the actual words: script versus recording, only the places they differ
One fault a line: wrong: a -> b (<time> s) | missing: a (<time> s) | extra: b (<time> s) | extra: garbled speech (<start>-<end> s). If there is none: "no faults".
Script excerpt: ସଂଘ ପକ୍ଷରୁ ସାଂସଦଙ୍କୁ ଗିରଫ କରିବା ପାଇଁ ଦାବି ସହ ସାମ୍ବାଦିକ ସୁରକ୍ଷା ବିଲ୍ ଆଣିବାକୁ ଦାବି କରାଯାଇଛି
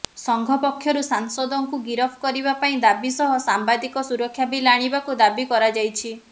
no faults